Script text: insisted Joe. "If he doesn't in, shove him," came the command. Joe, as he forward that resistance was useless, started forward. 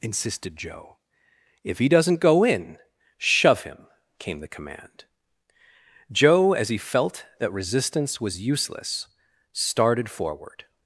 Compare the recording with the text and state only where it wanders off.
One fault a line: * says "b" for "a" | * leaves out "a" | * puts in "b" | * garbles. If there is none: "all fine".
* puts in "go"
* says "felt" for "forward"